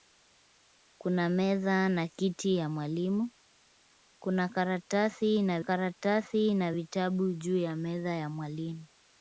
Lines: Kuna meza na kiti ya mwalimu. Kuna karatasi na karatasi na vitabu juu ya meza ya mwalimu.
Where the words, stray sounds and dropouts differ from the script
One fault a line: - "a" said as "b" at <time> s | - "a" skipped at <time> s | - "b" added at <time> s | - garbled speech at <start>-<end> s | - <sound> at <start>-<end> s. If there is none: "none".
none